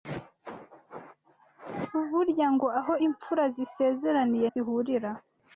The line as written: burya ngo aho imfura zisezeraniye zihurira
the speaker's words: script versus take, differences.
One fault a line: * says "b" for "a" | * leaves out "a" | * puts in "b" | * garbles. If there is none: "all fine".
all fine